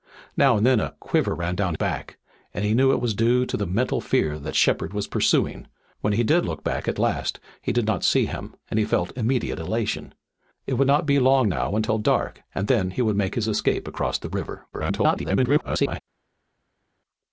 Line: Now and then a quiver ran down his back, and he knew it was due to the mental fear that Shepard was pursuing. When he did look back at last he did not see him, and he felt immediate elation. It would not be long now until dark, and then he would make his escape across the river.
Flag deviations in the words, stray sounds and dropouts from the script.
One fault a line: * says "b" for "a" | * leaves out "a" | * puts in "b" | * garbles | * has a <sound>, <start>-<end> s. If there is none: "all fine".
* leaves out "his"
* garbles